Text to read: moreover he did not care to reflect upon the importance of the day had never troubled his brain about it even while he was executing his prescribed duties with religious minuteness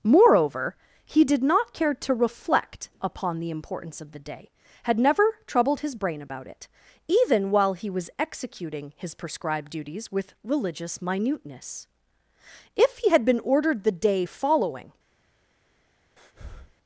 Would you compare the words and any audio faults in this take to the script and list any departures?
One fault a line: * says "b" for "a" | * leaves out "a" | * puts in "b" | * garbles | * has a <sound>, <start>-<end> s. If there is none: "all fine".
* puts in "if he had been ordered the day following"
* has a breath, 16.2-16.8 s